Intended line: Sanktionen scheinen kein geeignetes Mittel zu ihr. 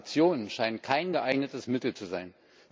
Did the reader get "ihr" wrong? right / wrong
wrong